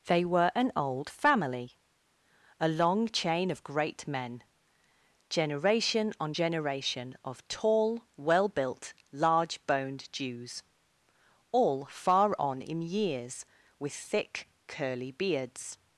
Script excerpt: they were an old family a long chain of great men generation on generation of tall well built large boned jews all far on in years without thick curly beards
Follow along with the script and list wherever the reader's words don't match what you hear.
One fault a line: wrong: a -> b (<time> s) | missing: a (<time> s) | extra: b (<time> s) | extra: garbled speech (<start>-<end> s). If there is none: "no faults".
wrong: without -> with (13.8 s)